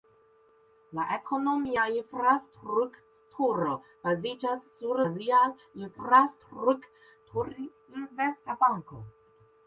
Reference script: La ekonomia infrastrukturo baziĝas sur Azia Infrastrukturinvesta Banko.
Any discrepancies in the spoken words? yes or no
no